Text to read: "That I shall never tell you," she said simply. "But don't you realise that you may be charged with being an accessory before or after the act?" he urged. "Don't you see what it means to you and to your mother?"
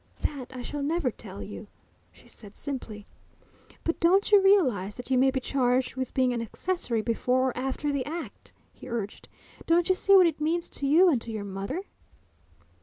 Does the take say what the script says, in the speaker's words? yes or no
yes